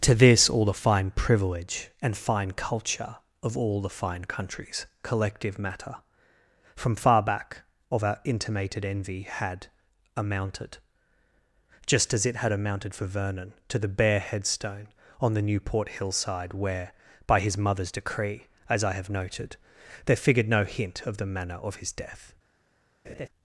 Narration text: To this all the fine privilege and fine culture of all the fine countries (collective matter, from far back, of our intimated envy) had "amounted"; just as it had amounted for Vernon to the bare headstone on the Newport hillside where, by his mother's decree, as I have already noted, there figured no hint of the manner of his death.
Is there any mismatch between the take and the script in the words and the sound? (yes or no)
yes